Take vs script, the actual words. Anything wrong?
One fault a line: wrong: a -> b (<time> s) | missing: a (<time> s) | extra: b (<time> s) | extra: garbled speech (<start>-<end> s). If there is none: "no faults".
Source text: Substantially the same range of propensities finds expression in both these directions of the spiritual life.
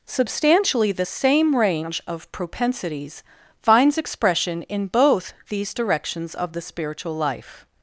no faults